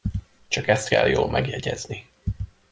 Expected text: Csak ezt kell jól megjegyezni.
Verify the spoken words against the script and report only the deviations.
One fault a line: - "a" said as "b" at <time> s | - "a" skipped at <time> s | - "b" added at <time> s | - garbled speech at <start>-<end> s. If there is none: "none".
none